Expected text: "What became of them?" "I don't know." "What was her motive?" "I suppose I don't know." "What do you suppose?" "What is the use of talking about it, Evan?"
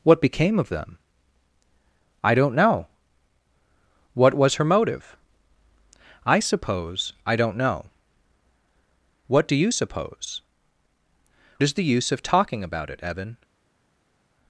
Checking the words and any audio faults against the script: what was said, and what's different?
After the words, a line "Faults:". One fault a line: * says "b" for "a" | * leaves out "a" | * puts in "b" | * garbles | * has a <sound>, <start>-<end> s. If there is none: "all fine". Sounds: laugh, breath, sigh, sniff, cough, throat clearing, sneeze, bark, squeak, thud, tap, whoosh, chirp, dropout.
"What became of them?" "I don't know." "What was her motive?" "I suppose I don't know." "What do you suppose?" "Is the use of talking about it, Evan?"
Faults:
* leaves out "What"